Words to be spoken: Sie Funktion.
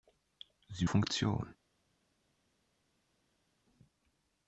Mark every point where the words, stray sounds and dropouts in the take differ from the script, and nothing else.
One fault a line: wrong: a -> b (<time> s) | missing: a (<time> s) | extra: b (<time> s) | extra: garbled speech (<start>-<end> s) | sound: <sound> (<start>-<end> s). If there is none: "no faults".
no faults